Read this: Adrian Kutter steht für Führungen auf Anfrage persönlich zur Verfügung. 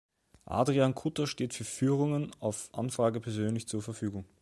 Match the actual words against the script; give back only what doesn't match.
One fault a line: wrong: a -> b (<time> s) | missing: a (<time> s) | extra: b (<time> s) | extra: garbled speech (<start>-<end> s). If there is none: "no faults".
no faults